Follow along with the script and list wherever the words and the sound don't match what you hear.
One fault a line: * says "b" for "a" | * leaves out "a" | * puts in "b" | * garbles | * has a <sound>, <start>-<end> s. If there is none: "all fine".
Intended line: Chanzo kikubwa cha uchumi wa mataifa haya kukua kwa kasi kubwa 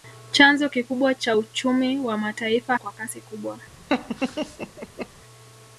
* leaves out "haya kukua"
* has a laugh, 3.9-5.1 s